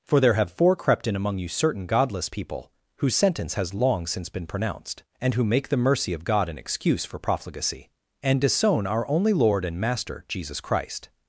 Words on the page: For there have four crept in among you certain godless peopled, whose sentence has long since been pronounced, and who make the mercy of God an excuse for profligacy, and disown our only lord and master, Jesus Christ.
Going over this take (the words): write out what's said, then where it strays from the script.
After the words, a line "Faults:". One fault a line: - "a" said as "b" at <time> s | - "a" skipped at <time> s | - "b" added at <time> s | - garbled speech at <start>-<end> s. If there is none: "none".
For there have four crept in among you certain godless people, whose sentence has long since been pronounced, and who make the mercy of God an excuse for profligacy, and disown our only lord and master, Jesus Christ.
Faults:
- "peopled" said as "people" at 2.3 s